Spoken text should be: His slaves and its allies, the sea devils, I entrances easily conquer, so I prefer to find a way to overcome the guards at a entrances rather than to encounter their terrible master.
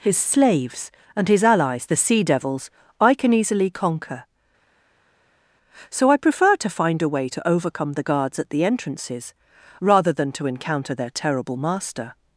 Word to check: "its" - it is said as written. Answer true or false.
false